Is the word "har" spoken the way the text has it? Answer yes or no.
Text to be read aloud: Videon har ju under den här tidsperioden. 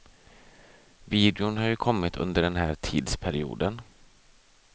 yes